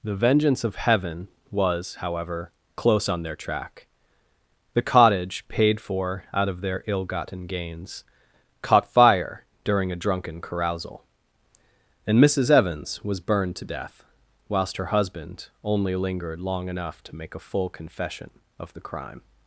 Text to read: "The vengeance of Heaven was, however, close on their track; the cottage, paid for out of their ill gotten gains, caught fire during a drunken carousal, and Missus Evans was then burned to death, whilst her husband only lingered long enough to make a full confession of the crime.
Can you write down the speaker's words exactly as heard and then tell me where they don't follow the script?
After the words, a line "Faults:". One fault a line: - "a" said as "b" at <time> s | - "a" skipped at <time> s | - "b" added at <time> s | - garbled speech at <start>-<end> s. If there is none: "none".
"The vengeance of Heaven was, however, close on their track; the cottage, paid for out of their ill gotten gains, caught fire during a drunken carousal, and Missus Evans was burned to death, whilst her husband only lingered long enough to make a full confession of the crime.
Faults:
- "then" skipped at 13.2 s